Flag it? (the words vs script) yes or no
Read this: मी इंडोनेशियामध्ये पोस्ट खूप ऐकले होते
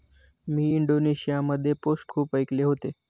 no